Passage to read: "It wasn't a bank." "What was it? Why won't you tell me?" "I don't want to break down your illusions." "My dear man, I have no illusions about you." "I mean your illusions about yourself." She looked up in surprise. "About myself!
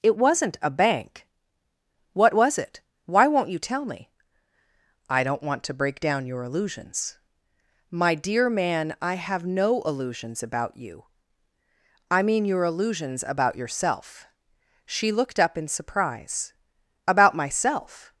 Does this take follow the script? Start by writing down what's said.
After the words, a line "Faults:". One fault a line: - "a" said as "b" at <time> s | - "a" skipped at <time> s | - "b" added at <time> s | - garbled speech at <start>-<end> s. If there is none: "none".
"It wasn't a bank." "What was it? Why won't you tell me?" "I don't want to break down your illusions." "My dear man, I have no illusions about you." "I mean your illusions about yourself." She looked up in surprise. "About myself!
Faults:
none